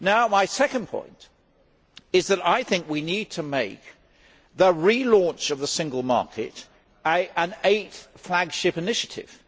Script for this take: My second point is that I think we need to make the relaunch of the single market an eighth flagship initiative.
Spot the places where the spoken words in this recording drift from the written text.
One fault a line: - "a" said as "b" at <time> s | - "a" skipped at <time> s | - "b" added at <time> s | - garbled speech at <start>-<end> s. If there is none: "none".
none